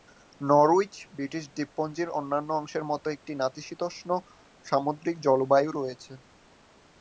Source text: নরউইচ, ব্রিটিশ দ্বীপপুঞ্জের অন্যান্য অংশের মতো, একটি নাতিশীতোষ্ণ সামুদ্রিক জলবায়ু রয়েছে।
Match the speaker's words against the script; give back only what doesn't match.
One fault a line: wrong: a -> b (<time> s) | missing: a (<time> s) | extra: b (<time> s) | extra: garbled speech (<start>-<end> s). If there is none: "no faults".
no faults